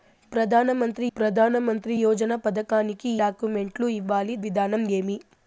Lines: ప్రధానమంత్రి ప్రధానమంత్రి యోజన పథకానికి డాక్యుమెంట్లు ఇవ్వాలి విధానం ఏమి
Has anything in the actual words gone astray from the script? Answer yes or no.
no